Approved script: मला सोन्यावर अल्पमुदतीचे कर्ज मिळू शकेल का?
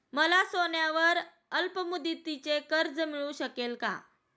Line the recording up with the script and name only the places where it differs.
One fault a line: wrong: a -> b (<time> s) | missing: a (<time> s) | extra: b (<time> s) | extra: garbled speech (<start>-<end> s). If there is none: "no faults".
no faults